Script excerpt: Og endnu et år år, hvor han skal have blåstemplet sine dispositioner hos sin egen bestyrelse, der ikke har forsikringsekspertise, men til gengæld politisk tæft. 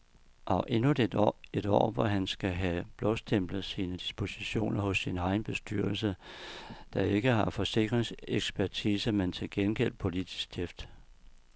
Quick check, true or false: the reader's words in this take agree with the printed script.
false